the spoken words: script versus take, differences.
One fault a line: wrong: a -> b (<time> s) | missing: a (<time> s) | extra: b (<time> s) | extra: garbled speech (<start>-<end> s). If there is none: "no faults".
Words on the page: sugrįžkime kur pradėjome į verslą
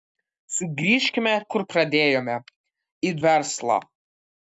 no faults